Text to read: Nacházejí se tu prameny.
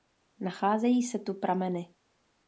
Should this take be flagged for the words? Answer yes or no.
no